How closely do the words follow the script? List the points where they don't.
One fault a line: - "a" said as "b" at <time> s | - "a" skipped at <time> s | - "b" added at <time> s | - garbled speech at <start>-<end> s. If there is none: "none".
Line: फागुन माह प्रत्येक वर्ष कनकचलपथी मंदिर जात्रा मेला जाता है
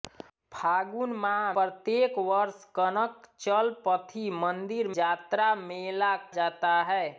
none